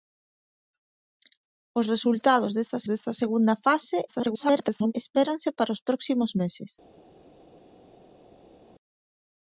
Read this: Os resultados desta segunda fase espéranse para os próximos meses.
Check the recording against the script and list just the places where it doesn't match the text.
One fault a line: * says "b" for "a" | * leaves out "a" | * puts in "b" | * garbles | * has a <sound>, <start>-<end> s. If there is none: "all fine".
* puts in "desta"
* garbles